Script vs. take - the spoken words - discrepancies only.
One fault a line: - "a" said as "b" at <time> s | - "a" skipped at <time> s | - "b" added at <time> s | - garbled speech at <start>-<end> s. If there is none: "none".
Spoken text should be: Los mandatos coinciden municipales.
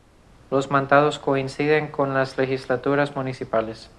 - "con las legislaturas" added at 1.9 s